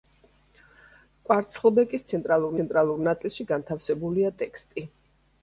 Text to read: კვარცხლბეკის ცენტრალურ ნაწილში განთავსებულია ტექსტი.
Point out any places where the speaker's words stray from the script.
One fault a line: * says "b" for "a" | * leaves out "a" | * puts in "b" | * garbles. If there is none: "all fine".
* puts in "ცენტრალურ"